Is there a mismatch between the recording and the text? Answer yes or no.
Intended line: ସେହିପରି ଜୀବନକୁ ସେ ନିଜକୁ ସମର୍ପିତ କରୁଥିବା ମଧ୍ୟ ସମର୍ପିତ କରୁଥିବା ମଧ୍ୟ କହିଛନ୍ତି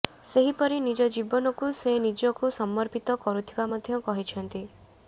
yes